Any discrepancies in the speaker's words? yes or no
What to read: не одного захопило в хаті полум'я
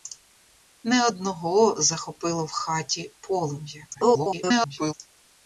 yes